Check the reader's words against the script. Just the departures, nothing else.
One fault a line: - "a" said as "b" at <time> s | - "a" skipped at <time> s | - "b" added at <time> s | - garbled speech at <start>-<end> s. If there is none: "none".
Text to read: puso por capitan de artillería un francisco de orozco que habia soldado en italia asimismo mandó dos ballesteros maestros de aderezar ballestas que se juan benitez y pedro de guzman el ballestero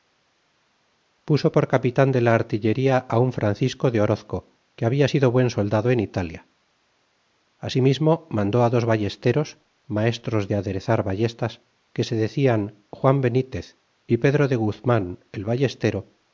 - "la" added at 2.2 s
- "sido buen" added at 5.1 s
- "decian" added at 12.2 s